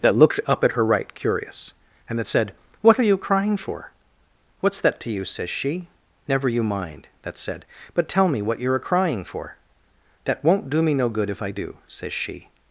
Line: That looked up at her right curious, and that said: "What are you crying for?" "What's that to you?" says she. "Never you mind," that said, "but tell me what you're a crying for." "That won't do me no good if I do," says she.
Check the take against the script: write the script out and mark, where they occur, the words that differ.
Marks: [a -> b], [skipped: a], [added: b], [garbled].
That looked up at her right curious, and that said: "What are you crying for?" "What's that to you?" says she. "Never you mind," that said, "but tell me what you're a crying for." "That won't do me no good if I do," says she.